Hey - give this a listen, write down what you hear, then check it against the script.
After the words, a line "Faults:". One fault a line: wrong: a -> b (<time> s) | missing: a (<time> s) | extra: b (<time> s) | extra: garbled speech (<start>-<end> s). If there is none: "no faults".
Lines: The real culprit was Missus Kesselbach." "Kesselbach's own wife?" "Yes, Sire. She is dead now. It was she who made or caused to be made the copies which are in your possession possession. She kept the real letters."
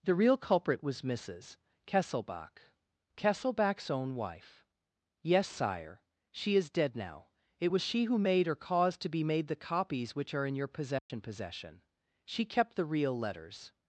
The real culprit was Missus Kesselbach." "Kesselbach's own wife?" "Yes, Sire. She is dead now. It was she who made or caused to be made the copies which are in your possession possession. She kept the real letters."
Faults:
no faults